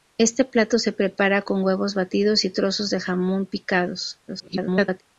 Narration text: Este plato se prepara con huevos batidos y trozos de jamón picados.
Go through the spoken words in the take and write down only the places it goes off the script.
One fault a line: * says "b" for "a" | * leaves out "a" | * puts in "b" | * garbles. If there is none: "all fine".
* garbles